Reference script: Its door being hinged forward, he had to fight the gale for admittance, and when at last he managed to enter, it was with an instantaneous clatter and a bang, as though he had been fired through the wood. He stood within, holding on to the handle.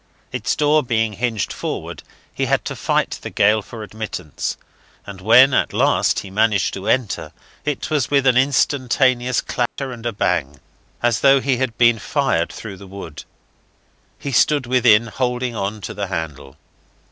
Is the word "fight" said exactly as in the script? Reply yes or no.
yes